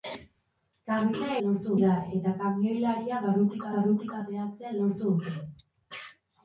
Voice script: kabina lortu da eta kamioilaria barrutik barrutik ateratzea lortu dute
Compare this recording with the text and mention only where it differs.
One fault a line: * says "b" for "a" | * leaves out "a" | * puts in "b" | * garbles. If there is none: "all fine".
all fine